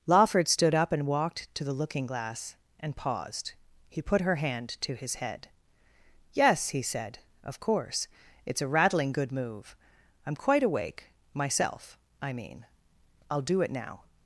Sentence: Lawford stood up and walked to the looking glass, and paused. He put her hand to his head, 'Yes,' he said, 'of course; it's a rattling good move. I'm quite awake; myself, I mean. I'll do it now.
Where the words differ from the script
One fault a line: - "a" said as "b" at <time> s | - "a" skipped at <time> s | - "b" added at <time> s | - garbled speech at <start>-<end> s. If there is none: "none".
none